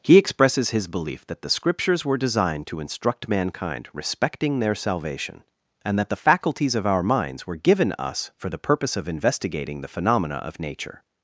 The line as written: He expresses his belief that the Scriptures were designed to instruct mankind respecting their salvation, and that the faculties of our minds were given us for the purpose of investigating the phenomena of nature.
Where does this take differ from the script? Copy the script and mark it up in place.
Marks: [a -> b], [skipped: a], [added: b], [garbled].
He expresses his belief that the Scriptures were designed to instruct mankind respecting their salvation, and that the faculties of our minds were given us for the purpose of investigating the phenomena of nature.